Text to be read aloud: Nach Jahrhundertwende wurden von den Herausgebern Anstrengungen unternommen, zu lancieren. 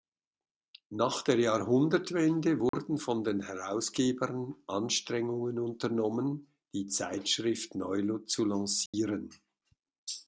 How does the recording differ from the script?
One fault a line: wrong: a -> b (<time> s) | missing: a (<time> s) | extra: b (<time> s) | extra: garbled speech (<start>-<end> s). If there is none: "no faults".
extra: der (1.2 s)
extra: die Zeitschrift neu (6.7 s)